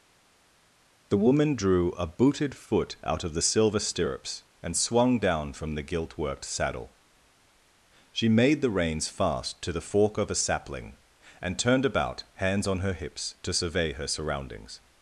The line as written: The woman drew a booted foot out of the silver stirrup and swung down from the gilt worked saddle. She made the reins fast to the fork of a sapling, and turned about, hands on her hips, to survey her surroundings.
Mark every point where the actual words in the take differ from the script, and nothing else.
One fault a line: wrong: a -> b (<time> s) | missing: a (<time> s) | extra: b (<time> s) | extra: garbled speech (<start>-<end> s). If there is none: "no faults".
wrong: stirrup -> stirrups (3.8 s)